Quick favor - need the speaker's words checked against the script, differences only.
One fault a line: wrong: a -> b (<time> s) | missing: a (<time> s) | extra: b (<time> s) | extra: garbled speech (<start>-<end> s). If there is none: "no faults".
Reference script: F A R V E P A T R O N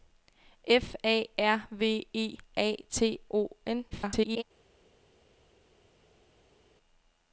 missing: P (2.4 s)
missing: R (3.2 s)
extra: garbled speech (3.9-4.4 s)